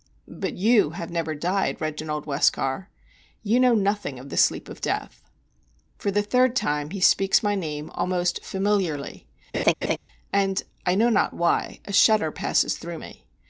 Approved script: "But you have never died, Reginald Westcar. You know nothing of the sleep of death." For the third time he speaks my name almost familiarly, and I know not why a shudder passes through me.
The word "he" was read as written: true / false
true